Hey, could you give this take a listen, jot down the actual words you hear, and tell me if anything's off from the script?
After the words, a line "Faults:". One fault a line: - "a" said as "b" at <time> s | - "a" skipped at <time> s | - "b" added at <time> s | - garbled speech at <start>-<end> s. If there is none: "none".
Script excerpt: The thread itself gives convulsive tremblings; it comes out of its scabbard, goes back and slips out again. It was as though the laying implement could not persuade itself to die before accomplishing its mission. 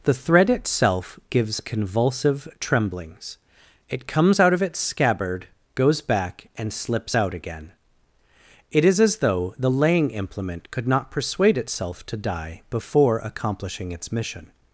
The thread itself gives convulsive tremblings; it comes out of its scabbard, goes back and slips out again. It is as though the laying implement could not persuade itself to die before accomplishing its mission.
Faults:
- "was" said as "is" at 8.9 s